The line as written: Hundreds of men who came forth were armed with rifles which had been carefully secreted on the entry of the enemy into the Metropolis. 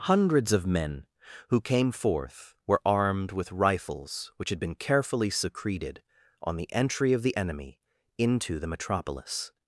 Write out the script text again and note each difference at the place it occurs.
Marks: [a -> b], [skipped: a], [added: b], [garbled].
Hundreds of men who came forth were armed with rifles which had been carefully secreted on the entry of the enemy into the Metropolis.